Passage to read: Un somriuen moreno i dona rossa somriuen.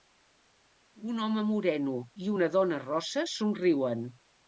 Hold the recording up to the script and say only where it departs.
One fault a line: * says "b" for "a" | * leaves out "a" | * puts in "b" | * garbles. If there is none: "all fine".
* says "home" for "somriuen"
* puts in "una"